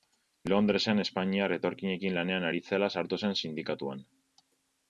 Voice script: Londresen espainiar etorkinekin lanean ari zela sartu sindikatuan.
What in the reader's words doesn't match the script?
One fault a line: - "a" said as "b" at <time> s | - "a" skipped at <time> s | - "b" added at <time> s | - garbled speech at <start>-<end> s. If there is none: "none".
- "zen" added at 3.2 s